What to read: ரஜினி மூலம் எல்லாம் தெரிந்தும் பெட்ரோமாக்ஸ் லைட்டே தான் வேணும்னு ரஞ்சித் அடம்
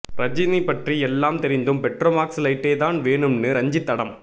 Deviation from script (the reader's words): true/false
true